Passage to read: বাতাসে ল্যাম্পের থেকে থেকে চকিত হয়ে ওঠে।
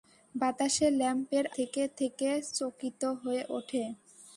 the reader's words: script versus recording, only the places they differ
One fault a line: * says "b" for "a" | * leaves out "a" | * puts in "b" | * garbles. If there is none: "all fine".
all fine